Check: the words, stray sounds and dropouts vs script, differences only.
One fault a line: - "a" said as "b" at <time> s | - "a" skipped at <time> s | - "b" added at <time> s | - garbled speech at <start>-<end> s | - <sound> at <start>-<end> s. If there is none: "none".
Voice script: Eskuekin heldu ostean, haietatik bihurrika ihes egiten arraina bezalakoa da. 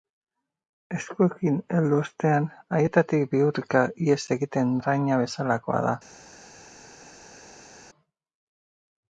none